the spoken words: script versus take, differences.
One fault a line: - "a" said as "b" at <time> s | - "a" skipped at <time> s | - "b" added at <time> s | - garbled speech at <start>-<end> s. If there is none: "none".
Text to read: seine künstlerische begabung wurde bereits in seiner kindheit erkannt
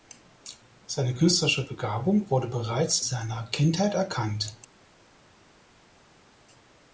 - "in" skipped at 3.0 s